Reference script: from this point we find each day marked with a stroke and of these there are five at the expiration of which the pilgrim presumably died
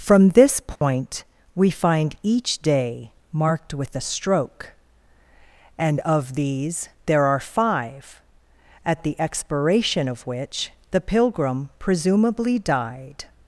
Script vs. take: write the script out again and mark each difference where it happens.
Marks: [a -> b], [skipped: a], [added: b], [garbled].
from this point we find each day marked with a stroke and of these there are five at the expiration of which the pilgrim presumably died